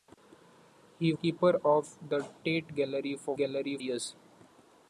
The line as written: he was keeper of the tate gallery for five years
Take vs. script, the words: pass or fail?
fail